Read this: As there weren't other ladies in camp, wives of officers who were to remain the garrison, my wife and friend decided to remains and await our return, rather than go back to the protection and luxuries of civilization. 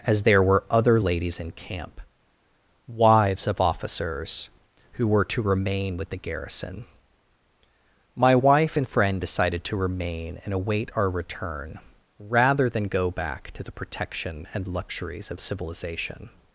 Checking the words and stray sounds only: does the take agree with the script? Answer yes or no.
no